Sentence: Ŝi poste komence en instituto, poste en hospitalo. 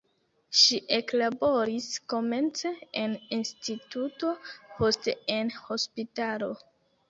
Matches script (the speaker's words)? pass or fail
fail